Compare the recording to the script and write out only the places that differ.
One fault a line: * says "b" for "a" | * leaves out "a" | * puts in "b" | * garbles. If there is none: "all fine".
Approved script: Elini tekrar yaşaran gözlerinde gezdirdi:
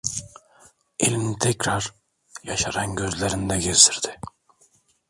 all fine